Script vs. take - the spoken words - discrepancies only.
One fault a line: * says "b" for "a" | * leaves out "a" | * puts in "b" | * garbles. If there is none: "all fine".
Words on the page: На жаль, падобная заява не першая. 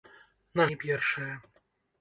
* leaves out "жаль падобная заява"